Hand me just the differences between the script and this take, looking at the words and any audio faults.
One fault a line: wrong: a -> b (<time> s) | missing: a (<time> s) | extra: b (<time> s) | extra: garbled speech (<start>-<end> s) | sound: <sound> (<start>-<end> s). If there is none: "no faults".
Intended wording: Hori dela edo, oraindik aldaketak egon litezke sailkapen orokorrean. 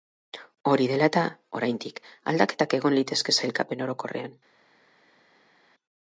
wrong: edo -> eta (1.1 s)